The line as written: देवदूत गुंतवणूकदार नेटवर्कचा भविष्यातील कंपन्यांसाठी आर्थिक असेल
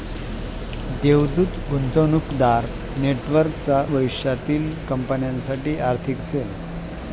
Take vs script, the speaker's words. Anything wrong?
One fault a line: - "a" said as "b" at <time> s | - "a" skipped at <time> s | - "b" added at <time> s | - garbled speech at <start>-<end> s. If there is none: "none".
none